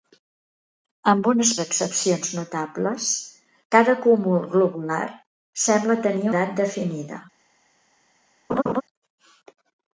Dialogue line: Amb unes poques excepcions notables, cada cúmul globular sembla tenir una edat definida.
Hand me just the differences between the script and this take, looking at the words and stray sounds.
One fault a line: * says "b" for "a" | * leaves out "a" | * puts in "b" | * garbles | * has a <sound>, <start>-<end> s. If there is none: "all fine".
* leaves out "poques"
* leaves out "una"
* has a laugh, 8.5-8.8 s